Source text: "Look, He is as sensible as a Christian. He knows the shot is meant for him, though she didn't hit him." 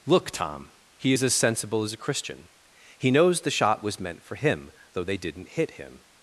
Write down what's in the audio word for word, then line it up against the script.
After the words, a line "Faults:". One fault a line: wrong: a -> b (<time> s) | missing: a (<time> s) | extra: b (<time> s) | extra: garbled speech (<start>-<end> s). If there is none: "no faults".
"Look, Tom, he is as sensible as a Christian. He knows the shot was meant for him, though they didn't hit him."
Faults:
extra: Tom (0.3 s)
wrong: is -> was (3.8 s)
wrong: she -> they (5.0 s)